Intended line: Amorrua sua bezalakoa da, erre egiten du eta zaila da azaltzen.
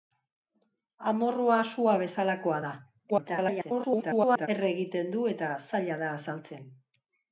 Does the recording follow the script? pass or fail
fail